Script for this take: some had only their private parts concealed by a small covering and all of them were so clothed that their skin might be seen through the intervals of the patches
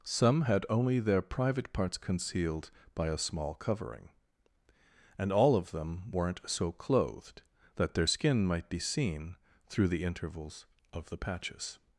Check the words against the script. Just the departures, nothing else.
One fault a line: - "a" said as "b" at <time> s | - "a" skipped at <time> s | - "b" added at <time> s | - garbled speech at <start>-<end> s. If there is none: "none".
- "were" said as "weren't" at 6.1 s